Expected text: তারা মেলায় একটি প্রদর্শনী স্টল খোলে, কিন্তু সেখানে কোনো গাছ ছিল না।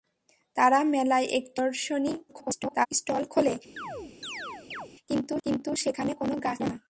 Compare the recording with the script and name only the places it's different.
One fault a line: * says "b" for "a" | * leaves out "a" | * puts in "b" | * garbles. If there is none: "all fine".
* garbles
* puts in "কিন্তু"
* leaves out "ছিল"